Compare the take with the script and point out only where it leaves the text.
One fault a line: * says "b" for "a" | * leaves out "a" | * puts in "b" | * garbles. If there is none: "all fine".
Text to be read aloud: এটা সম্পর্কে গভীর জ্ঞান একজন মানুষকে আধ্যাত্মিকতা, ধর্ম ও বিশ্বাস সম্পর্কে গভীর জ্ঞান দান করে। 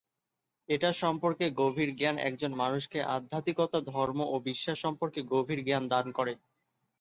all fine